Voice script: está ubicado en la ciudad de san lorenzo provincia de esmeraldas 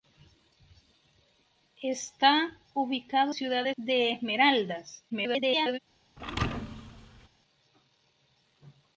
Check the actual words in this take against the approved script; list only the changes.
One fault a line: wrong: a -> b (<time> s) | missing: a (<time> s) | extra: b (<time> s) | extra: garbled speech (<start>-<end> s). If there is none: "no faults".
missing: en la (3.4 s)
missing: san lorenzo provincia (3.7 s)
extra: garbled speech (5.1-5.8 s)